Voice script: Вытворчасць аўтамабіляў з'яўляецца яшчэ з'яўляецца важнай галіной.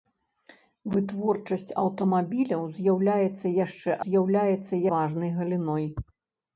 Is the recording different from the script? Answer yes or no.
no